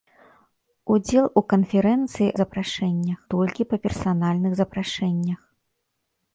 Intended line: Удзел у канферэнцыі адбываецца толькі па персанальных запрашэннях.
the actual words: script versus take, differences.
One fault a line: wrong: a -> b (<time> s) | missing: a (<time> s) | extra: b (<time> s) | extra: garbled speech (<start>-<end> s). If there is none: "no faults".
wrong: адбываецца -> запрашэннях (2.4 s)